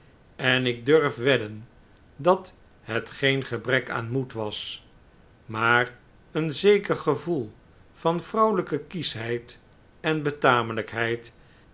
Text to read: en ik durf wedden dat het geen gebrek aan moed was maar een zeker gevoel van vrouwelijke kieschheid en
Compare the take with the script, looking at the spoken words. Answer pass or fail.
pass